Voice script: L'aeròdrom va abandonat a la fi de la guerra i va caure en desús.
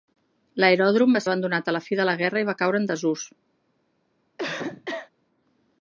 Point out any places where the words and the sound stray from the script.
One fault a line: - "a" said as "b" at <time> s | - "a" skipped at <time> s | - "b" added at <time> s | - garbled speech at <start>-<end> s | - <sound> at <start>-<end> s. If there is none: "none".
- cough at 4.4-5.1 s